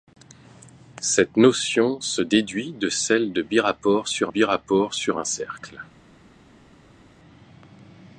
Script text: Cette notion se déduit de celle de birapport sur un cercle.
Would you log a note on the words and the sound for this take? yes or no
yes